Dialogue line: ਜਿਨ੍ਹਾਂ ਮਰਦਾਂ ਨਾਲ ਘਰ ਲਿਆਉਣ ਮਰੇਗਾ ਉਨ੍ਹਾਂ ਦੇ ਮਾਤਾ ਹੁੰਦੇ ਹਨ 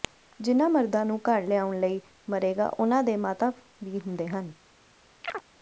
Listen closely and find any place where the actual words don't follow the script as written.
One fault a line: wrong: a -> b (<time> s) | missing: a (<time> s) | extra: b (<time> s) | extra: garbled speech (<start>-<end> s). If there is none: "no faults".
wrong: ਨਾਲ -> ਨੂੰ (1.1 s)
extra: ਲਈ (1.8 s)
extra: ਵੀ (3.8 s)